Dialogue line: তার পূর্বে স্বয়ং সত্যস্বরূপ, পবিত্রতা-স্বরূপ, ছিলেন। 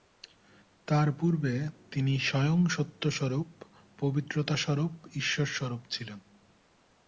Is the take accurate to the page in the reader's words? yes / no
no